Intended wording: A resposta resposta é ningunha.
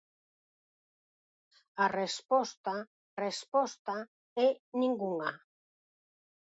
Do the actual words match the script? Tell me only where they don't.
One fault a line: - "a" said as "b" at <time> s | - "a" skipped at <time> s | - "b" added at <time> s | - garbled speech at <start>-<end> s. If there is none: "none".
none